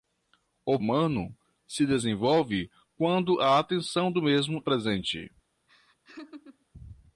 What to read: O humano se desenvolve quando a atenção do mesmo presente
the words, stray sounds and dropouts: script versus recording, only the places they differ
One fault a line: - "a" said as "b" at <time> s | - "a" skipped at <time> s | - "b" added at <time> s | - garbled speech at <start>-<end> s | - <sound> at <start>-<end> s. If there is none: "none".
- laugh at 5.7-6.7 s